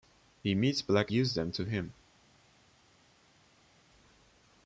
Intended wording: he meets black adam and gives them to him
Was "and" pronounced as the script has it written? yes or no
no